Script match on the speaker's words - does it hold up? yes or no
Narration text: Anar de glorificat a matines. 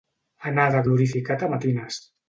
yes